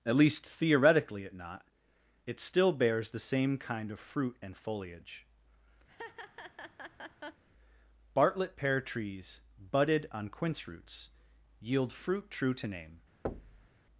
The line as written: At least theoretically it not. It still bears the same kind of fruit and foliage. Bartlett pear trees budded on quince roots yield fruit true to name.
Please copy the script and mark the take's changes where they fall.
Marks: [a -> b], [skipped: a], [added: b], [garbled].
At least theoretically it not. It still bears the same kind of fruit and foliage. Bartlett pear trees budded on quince roots yield fruit true to name.